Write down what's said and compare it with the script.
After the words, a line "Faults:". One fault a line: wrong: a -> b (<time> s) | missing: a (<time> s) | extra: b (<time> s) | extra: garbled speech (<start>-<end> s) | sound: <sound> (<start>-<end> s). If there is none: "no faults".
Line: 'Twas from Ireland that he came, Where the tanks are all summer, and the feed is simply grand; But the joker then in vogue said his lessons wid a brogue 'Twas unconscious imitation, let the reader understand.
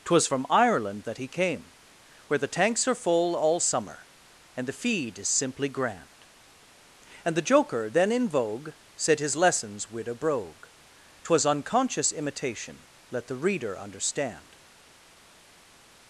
'Twas from Ireland that he came, Where the tanks are full all summer, and the feed is simply grand; And the joker then in vogue said his lessons wid a brogue 'Twas unconscious imitation, let the reader understand.
Faults:
extra: full (2.9 s)
wrong: But -> And (7.2 s)